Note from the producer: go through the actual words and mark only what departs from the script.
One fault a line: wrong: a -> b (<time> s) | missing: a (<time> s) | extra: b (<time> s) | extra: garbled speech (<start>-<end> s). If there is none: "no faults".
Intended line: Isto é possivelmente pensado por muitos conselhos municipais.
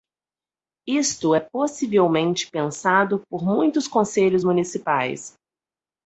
no faults